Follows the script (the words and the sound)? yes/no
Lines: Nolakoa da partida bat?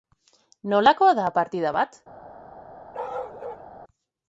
no